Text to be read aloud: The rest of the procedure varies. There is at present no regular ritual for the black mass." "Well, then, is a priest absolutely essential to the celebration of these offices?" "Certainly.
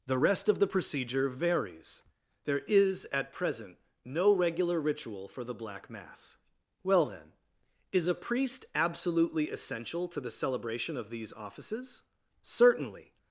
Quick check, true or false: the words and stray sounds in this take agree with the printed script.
true